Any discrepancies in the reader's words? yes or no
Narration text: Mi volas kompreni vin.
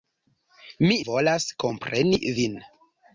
no